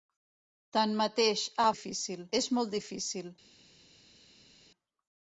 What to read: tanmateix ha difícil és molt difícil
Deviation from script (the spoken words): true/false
false